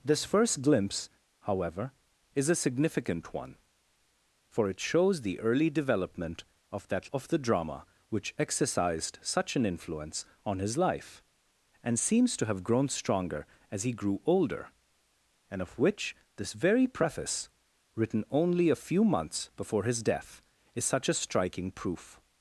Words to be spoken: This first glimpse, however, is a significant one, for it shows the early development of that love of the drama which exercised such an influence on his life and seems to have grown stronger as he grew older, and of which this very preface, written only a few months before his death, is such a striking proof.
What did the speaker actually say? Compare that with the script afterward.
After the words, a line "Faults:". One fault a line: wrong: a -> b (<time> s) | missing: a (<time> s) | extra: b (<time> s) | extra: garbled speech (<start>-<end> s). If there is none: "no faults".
This first glimpse, however, is a significant one, for it shows the early development of that of the drama which exercised such an influence on his life and seems to have grown stronger as he grew older, and of which this very preface, written only a few months before his death, is such a striking proof.
Faults:
missing: love (7.1 s)